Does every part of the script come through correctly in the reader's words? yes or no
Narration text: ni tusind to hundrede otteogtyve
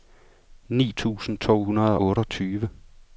yes